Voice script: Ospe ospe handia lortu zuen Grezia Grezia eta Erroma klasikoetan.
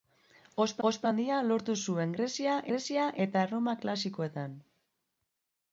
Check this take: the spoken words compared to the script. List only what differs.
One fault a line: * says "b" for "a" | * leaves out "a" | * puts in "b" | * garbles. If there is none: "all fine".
all fine